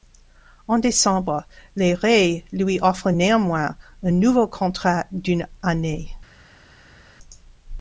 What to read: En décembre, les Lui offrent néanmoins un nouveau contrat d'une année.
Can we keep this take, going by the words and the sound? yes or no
no